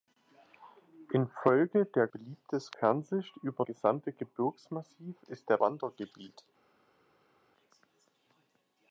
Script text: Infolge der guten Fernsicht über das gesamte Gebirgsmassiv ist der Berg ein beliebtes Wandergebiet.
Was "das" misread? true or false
true